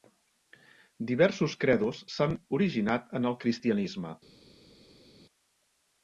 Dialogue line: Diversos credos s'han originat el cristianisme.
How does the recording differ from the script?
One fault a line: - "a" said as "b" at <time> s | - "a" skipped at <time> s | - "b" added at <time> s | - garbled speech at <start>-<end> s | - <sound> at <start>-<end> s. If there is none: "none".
- "en" added at 3.2 s